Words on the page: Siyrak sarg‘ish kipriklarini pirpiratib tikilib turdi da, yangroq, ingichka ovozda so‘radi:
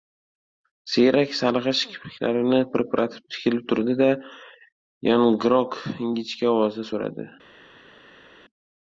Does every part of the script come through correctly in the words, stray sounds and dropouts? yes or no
yes